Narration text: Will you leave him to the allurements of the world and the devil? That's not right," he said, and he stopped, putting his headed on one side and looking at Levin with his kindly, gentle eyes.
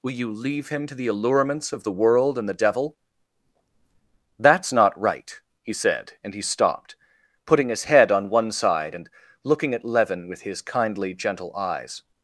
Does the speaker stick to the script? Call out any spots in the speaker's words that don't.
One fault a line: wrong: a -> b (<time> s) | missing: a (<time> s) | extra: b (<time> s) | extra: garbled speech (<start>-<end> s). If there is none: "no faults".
wrong: headed -> head (7.8 s)